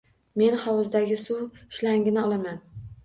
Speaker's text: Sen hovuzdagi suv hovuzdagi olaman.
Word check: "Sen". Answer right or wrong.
wrong